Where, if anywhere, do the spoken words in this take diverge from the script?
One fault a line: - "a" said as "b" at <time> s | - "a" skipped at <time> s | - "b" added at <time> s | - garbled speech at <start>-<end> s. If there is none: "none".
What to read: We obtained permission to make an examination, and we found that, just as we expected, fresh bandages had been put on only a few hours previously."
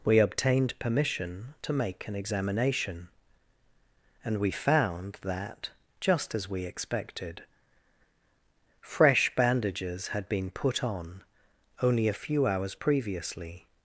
none